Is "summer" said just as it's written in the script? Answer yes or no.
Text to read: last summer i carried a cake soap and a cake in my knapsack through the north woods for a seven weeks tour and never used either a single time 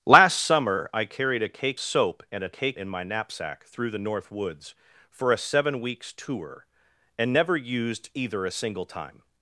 yes